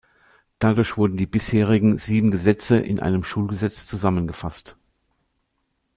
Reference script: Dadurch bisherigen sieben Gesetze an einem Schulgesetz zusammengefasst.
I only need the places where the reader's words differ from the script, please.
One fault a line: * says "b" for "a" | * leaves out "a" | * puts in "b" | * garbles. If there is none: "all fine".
* puts in "wurden die"
* says "in" for "an"